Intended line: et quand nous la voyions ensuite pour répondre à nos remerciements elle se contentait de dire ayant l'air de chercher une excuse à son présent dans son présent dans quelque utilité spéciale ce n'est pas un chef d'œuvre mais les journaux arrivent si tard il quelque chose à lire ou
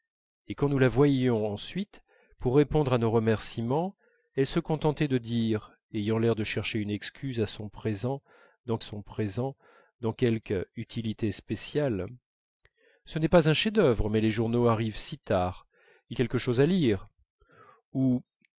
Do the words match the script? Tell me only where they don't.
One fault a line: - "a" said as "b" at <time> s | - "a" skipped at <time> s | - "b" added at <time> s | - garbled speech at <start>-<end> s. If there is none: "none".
none